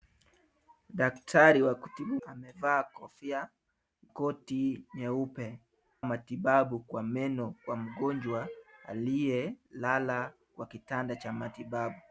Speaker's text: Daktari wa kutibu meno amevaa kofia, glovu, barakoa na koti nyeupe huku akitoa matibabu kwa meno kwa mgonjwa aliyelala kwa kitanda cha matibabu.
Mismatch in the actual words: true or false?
true